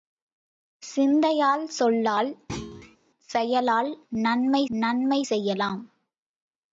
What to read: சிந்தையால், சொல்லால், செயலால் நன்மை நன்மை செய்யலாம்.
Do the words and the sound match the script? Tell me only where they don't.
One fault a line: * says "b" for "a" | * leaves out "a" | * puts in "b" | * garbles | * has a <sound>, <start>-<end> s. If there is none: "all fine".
* has a thud, 2.5-3.0 s